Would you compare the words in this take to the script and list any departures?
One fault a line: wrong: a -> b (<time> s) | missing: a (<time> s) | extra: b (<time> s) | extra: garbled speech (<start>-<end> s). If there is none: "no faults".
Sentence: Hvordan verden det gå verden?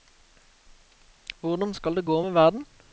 wrong: verden -> skal (1.7 s)
extra: med (2.2 s)